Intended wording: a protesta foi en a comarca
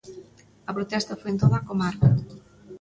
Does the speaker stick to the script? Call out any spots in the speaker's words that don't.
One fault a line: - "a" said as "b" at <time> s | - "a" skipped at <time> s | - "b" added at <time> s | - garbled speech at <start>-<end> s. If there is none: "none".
- "toda" added at 1.4 s